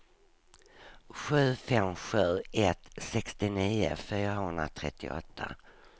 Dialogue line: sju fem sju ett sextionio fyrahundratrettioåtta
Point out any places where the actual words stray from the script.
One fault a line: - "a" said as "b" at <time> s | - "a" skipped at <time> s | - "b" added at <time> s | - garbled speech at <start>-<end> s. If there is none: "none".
none